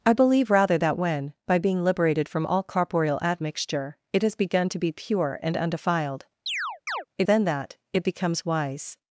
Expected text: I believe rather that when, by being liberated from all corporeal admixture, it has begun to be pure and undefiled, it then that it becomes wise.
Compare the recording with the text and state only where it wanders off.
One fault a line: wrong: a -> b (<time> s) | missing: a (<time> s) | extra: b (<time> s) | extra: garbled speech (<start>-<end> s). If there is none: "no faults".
no faults